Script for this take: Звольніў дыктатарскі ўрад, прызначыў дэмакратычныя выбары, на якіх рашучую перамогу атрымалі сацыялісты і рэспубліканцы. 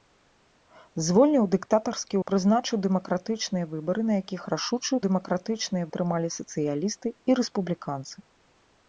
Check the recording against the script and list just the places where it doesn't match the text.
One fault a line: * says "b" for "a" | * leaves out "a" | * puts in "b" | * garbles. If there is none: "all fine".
* leaves out "ўрад"
* says "дэмакратычныя" for "перамогу"